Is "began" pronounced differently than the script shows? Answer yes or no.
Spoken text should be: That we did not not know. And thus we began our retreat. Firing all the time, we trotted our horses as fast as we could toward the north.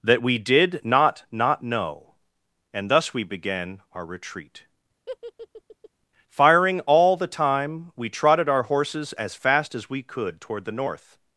no